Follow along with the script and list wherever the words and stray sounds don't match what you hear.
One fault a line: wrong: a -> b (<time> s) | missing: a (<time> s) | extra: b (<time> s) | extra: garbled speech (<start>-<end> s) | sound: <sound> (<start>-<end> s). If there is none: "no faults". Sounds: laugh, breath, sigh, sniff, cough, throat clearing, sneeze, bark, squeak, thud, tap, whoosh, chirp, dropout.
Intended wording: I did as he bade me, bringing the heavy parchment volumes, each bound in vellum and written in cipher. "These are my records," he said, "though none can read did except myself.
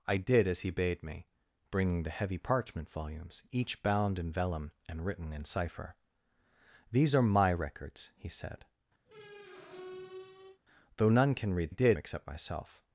sound: squeak (9.1-10.6 s)